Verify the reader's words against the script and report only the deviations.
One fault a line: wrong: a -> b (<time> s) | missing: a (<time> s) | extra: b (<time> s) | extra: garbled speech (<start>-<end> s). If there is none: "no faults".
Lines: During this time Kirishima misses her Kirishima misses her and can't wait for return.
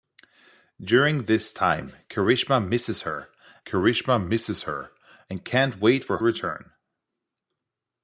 no faults